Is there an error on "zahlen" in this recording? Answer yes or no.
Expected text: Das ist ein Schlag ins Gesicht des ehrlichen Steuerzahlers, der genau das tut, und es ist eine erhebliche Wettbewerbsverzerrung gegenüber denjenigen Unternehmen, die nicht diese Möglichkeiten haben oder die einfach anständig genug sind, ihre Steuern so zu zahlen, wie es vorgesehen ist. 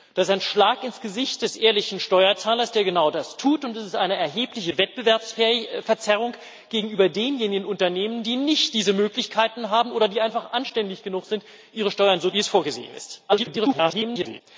yes